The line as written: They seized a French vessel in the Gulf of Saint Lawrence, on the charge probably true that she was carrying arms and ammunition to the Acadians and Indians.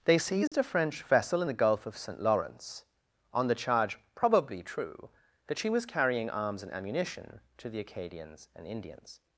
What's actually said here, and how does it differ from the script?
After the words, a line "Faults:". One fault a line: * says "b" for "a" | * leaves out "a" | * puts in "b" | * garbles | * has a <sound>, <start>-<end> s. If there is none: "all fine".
They seized a French vessel in the Gulf of Saint Lawrence, on the charge probably true that she was carrying arms and ammunition to the Acadians and Indians.
Faults:
* has a dropout, 0.5-0.5 s